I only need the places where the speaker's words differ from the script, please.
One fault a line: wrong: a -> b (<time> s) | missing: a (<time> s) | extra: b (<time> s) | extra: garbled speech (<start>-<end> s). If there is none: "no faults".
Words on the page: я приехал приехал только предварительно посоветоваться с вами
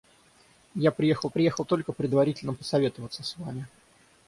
no faults